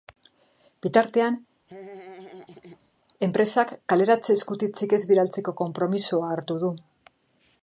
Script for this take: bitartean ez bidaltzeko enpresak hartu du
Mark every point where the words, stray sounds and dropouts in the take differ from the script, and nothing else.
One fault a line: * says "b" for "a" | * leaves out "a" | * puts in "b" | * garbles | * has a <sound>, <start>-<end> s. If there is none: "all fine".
* has a laugh, 1.7-2.9 s
* puts in "enpresak kaleratze eskutitzik"
* says "konpromisoa" for "enpresak"